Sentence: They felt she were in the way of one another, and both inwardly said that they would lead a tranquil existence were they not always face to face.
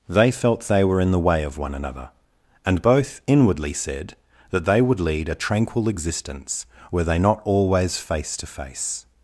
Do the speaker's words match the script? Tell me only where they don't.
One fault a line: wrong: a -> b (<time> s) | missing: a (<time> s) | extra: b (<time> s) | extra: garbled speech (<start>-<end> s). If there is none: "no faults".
wrong: she -> they (0.6 s)